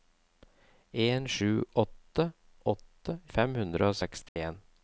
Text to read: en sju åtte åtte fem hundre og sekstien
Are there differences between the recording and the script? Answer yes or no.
no